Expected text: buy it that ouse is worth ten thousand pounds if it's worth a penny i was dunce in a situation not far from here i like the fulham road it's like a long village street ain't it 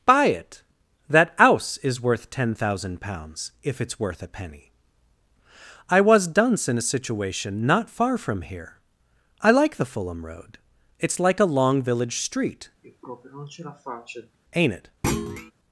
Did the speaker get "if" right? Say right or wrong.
right